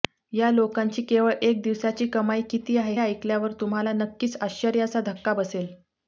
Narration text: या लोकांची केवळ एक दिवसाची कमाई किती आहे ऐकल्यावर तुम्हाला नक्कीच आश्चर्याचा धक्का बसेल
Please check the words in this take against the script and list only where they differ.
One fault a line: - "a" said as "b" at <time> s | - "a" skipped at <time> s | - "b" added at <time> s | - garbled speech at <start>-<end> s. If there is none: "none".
none